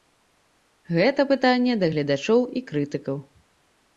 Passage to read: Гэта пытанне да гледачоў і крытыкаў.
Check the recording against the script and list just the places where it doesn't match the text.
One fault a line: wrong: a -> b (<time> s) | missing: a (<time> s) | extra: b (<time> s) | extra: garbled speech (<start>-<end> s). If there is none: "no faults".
no faults